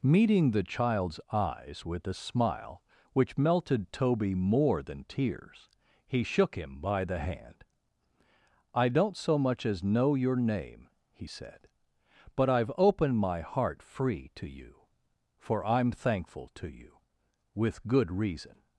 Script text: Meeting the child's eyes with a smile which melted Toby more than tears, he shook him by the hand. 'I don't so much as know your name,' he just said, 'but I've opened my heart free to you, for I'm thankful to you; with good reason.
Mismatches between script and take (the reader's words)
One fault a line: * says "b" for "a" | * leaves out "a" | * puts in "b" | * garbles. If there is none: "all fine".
* leaves out "just"